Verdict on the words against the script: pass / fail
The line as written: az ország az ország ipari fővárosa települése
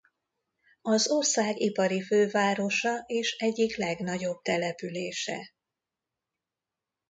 fail